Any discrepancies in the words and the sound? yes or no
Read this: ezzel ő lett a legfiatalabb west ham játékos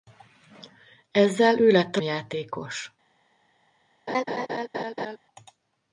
yes